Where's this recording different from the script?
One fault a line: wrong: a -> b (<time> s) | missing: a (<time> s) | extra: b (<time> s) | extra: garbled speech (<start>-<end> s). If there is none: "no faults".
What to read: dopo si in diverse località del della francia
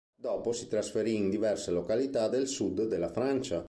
extra: trasferì (0.7 s)
extra: sud (2.5 s)